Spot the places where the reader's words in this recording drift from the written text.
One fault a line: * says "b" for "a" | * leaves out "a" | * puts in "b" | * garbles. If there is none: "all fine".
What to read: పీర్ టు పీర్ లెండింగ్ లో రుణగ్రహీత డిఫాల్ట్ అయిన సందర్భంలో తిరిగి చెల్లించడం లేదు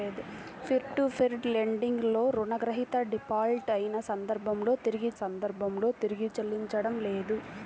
* puts in "సందర్భంలో తిరిగి"